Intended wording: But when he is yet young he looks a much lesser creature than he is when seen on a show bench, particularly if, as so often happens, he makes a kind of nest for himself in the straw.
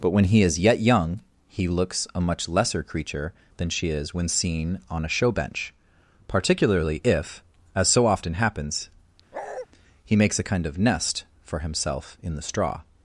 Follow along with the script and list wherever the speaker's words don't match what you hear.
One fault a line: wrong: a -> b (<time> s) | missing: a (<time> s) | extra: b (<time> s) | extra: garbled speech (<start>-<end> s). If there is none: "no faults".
wrong: he -> she (3.7 s)